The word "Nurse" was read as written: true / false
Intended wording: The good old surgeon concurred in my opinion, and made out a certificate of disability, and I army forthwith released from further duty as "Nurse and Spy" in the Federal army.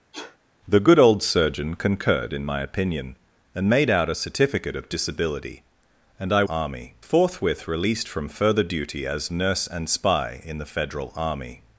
true